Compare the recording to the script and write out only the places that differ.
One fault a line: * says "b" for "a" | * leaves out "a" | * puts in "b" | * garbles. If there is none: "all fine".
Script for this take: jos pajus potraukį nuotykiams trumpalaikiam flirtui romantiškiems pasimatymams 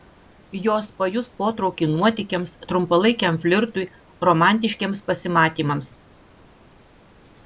all fine